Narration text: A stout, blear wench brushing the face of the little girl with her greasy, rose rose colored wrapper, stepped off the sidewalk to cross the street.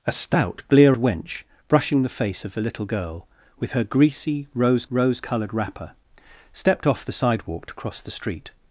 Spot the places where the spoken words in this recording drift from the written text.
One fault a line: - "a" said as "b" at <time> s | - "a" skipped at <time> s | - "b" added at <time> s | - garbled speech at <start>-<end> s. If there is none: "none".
none